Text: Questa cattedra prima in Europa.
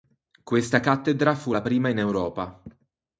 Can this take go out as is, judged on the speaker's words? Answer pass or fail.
fail